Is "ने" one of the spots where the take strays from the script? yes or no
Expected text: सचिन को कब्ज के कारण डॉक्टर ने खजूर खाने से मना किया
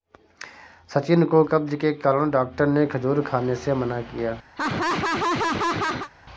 no